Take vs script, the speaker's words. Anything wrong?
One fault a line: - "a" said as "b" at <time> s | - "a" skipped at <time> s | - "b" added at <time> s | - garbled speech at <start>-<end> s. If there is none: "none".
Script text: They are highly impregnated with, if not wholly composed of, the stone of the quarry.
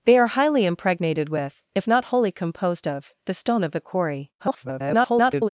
- garbled speech at 4.4-5.5 s